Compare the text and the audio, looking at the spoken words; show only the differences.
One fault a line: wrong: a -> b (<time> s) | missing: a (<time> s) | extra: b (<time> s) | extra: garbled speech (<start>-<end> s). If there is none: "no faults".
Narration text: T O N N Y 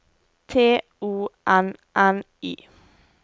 no faults